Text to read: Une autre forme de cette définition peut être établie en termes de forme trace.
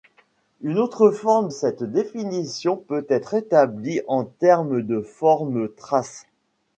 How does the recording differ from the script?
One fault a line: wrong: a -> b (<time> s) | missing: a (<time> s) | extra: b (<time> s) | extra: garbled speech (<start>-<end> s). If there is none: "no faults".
missing: de (1.5 s)